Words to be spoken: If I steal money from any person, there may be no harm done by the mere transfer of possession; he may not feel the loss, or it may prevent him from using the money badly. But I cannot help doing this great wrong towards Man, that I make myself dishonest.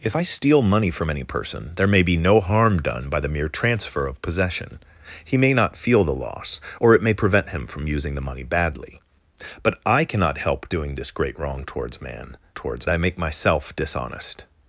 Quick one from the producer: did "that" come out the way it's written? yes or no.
no